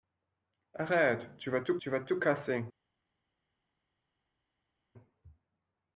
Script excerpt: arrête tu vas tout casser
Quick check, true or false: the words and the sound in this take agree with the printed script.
false